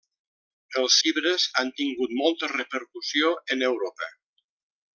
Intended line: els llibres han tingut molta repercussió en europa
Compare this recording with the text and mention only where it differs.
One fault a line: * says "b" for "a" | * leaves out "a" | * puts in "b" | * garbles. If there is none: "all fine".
all fine